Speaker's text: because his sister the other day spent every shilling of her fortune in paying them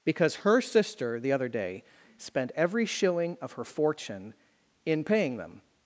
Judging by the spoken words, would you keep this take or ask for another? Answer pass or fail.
fail